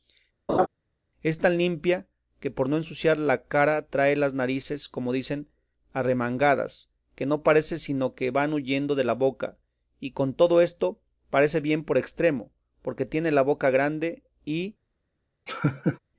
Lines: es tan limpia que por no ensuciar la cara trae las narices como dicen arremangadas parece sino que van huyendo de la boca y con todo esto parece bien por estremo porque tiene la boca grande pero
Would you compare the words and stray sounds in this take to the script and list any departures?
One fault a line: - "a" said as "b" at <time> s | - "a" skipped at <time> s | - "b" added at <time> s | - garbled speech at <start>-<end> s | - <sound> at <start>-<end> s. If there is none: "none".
- laugh at 0.5-0.7 s
- "que no" added at 7.1 s
- "pero" said as "y" at 14.4 s
- laugh at 15.5-16.0 s